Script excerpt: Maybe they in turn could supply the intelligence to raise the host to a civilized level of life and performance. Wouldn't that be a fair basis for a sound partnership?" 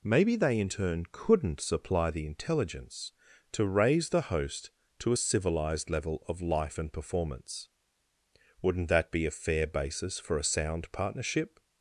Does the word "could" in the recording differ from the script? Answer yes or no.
yes